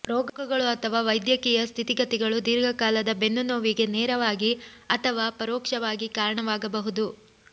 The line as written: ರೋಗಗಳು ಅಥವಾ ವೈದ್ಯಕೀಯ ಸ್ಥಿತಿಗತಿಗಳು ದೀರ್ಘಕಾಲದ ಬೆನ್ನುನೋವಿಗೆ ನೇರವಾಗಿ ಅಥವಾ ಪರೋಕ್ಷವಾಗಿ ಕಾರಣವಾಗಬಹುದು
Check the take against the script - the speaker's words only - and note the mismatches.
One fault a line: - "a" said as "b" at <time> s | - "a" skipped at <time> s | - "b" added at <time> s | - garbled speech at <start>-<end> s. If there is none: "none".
none